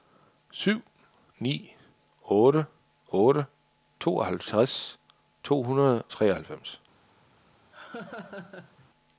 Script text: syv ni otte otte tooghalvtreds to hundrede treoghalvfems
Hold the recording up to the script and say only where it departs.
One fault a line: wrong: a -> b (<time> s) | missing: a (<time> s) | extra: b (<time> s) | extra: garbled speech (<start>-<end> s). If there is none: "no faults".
no faults